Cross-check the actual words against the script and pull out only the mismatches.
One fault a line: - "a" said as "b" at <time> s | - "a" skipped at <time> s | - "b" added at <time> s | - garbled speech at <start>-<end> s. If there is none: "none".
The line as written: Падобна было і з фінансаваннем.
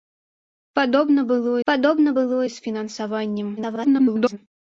- "падобна было" added at 1.7 s
- garbled speech at 3.6-4.4 s